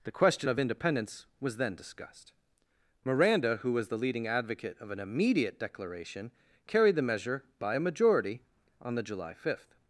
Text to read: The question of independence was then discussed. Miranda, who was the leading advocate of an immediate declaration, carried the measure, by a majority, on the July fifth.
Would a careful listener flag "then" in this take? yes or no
no